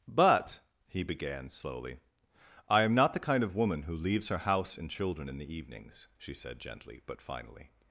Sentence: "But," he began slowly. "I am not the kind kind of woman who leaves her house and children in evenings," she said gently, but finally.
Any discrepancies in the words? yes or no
yes